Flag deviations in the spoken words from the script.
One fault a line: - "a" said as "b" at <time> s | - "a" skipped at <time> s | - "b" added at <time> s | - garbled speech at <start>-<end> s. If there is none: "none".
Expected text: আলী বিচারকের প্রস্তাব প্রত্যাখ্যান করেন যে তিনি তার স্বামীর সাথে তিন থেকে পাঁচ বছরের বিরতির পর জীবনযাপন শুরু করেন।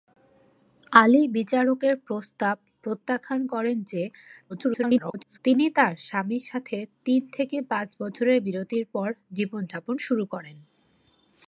- garbled speech at 4.5-5.4 s